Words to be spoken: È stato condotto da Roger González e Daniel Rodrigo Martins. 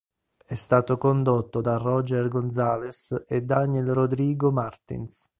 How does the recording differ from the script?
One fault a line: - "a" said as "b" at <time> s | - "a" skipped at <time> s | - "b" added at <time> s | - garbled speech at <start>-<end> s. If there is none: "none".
none